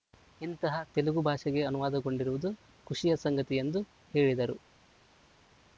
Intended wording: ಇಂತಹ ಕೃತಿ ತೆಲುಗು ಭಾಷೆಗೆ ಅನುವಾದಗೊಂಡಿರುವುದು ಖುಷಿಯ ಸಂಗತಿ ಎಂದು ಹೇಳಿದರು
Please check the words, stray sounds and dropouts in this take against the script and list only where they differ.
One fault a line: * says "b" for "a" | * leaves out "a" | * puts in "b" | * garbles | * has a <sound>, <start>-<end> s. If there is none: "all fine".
* leaves out "ಕೃತಿ"